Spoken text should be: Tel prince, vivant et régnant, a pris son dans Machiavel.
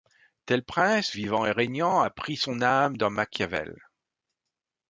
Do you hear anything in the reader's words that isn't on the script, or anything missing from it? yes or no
yes